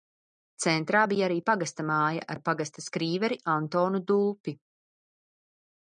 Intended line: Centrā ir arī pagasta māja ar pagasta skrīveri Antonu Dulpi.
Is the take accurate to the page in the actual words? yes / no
no